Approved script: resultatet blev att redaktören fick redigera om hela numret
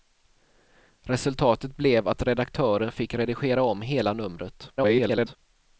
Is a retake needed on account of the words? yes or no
yes